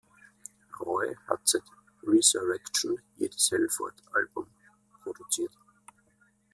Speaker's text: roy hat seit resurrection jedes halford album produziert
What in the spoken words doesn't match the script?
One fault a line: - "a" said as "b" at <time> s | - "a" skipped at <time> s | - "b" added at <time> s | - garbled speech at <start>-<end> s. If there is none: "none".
none